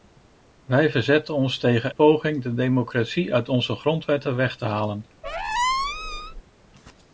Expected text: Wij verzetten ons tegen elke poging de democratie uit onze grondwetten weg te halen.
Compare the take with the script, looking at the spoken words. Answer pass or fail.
fail